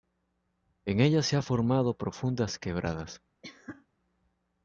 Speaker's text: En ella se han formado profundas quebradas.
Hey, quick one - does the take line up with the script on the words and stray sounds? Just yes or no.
no